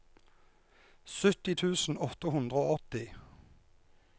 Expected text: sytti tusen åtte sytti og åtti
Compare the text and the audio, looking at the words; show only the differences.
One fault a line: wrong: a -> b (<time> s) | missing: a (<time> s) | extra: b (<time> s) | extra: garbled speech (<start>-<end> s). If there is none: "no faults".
wrong: sytti -> hundre (2.4 s)